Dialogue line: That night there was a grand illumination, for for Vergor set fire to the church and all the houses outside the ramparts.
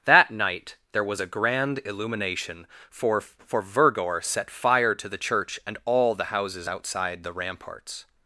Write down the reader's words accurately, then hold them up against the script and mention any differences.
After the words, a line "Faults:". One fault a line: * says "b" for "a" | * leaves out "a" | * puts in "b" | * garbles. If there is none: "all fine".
That night there was a grand illumination, for for Vergor set fire to the church and all the houses outside the ramparts.
Faults:
all fine